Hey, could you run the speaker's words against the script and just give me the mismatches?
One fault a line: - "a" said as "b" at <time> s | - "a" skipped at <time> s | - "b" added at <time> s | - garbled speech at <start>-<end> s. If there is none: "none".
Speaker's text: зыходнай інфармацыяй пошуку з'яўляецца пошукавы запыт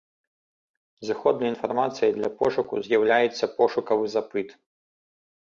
- "для" added at 2.2 s